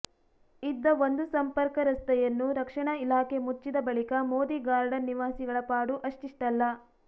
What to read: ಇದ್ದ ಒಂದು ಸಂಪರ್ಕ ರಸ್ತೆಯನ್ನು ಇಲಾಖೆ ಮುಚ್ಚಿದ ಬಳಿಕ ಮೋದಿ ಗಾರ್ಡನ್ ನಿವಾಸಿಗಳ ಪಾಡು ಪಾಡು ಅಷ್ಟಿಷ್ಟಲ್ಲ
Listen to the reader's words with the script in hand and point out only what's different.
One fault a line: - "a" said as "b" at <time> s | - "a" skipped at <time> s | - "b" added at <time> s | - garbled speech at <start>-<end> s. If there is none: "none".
- "ರಕ್ಷಣಾ" added at 2.6 s
- "ಪಾಡು" skipped at 6.0 s